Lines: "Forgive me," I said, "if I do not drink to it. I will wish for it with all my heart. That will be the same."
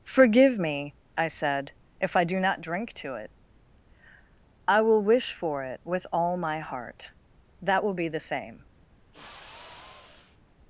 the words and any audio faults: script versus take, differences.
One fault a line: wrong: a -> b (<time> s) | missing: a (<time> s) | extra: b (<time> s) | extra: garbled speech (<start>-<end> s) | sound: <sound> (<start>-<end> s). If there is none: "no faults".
sound: sigh (9.1-10.4 s)